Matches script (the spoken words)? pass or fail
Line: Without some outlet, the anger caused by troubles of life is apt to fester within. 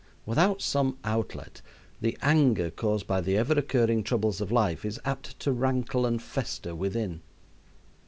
fail